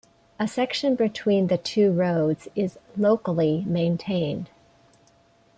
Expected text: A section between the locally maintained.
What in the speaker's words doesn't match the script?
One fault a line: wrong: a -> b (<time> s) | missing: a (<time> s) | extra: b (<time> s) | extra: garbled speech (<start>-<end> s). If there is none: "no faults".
extra: two roads is (1.6 s)